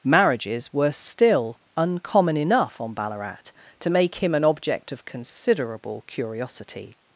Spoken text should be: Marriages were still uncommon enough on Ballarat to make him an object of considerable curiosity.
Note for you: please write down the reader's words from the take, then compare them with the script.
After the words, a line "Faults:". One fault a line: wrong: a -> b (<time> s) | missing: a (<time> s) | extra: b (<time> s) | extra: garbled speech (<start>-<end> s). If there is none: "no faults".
Marriages were still uncommon enough on Ballarat to make him an object of considerable curiosity.
Faults:
no faults